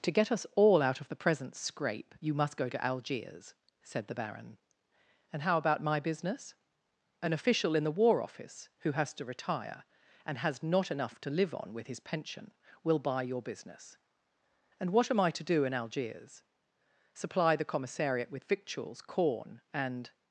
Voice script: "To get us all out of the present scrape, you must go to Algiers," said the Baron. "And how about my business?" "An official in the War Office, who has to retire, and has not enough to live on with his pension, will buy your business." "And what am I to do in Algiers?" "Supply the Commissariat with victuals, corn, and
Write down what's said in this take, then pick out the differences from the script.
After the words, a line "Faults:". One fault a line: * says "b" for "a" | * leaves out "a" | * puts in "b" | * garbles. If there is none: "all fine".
"To get us all out of the present scrape, you must go to Algiers," said the Baron. "And how about my business?" "An official in the War Office, who has to retire, and has not enough to live on with his pension, will buy your business." "And what am I to do in Algiers?" "Supply the Commissariat with victuals, corn, and
Faults:
all fine